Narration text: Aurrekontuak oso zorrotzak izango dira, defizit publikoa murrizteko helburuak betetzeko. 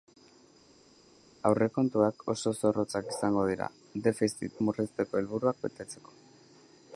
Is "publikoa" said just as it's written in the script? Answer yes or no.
no